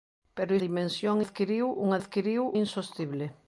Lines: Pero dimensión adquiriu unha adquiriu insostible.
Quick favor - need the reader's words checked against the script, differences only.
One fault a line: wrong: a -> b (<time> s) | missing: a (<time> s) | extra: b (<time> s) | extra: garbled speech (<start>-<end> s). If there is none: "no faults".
no faults